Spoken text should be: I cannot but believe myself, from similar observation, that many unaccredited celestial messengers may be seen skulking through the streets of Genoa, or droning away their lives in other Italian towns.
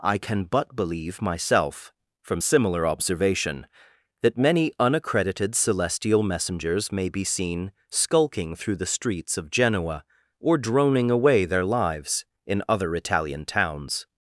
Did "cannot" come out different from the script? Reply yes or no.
yes